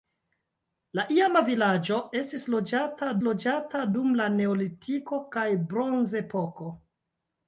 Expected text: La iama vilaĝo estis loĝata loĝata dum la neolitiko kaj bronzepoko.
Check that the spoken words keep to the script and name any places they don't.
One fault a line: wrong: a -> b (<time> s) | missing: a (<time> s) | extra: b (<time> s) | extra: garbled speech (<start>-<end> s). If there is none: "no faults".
no faults